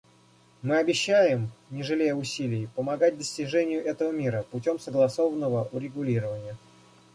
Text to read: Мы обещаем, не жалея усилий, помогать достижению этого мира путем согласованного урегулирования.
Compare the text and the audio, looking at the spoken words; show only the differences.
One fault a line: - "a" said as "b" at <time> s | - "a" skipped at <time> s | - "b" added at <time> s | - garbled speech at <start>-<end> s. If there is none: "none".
none